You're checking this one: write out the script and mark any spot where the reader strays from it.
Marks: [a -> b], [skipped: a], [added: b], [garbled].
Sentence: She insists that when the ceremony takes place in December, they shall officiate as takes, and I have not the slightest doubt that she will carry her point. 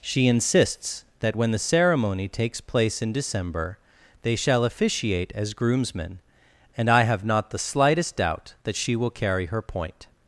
She insists that when the ceremony takes place in December, they shall officiate as [takes, -> groomsmen] and I have not the slightest doubt that she will carry her point.